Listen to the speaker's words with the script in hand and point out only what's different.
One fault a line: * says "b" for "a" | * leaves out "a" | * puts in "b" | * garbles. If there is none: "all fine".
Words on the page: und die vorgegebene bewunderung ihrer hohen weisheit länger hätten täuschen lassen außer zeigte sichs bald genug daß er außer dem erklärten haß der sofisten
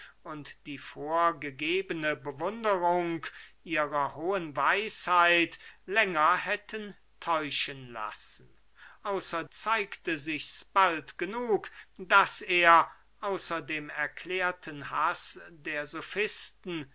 all fine